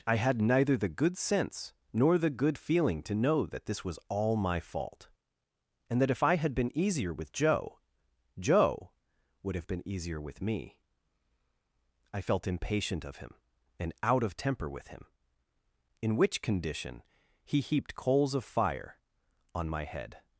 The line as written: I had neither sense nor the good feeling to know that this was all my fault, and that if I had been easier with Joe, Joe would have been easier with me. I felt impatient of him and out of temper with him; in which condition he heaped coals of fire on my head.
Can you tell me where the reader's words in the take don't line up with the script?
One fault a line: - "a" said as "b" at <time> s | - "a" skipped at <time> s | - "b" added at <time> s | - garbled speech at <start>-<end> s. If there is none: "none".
- "the good" added at 0.8 s